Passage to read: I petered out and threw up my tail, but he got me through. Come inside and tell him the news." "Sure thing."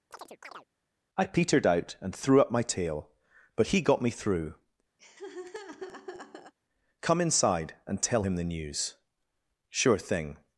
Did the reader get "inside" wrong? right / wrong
right